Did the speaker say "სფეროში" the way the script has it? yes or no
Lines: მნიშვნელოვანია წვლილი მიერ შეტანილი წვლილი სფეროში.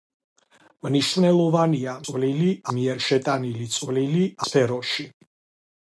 yes